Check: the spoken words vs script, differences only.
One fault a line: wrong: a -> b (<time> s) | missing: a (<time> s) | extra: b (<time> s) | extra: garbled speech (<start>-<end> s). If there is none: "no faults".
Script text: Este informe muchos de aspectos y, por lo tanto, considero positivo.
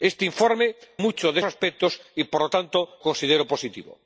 no faults